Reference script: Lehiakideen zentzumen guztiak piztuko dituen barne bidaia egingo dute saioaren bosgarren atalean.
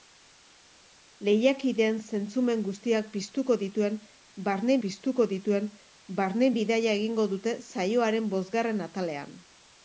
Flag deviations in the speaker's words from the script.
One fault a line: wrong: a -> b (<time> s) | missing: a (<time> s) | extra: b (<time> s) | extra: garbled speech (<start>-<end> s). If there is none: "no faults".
extra: piztuko dituen barne (4.8 s)